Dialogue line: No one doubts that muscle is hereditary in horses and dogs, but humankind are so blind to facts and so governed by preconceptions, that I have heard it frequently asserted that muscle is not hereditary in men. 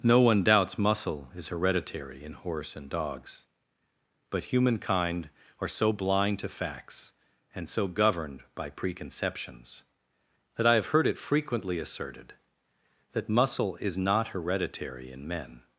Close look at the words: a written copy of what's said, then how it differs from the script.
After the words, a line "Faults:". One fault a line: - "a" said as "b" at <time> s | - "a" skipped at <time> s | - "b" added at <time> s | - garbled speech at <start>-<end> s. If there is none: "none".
No one doubts muscle is hereditary in horse and dogs, but humankind are so blind to facts and so governed by preconceptions, that I have heard it frequently asserted that muscle is not hereditary in men.
Faults:
- "that" skipped at 0.8 s
- "horses" said as "horse" at 2.3 s